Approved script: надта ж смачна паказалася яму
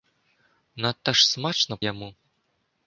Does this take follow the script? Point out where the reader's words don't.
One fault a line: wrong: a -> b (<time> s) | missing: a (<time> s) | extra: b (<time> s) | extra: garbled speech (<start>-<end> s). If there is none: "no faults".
missing: паказалася (1.8 s)